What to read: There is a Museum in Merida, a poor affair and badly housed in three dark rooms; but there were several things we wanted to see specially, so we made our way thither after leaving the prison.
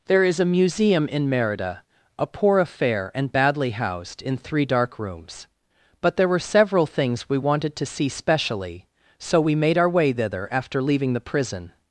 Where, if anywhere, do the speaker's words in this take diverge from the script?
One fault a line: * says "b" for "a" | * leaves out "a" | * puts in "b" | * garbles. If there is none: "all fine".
all fine